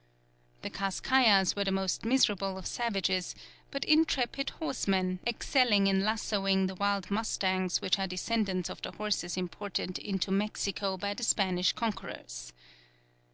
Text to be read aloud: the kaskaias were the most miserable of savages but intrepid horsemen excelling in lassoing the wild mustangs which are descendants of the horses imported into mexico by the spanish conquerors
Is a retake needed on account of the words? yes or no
no